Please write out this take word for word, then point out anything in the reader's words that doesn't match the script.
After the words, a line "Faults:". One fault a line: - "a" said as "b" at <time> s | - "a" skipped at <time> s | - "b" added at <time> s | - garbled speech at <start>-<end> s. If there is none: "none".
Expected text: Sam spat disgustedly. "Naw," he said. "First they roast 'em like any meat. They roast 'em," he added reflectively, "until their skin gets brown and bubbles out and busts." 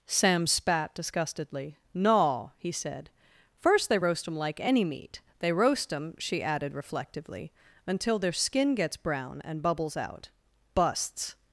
Sam spat disgustedly. "Naw," he said. "First they roast 'em like any meat. They roast 'em," she added reflectively, "until their skin gets brown and bubbles out busts."
Faults:
- "he" said as "she" at 6.2 s
- "and" skipped at 10.3 s